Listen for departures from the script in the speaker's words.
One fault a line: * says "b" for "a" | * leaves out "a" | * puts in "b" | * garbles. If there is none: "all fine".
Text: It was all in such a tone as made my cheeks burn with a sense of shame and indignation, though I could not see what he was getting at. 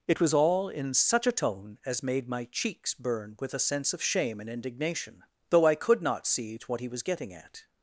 all fine